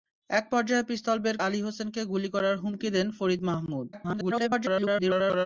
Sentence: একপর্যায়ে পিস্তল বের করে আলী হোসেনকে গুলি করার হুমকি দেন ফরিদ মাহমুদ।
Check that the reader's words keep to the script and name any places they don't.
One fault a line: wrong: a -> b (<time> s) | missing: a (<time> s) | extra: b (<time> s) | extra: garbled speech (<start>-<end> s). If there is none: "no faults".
missing: করে (1.4 s)
extra: garbled speech (3.9-5.5 s)